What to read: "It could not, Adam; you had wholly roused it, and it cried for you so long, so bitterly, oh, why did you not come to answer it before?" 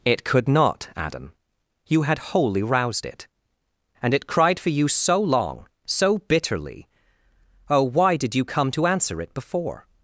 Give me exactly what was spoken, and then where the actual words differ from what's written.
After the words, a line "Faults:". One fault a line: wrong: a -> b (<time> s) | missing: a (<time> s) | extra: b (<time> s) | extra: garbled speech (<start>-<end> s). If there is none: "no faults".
"It could not, Adam; you had wholly roused it, and it cried for you so long, so bitterly, oh, why did you come to answer it before?"
Faults:
missing: not (8.4 s)